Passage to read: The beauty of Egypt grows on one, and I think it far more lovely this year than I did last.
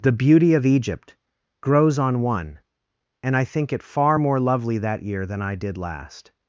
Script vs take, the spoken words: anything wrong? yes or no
yes